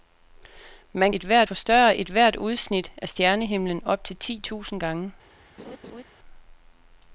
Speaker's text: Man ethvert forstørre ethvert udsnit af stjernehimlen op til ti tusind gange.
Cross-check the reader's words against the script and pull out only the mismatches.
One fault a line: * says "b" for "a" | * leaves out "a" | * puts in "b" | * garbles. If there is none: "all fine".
all fine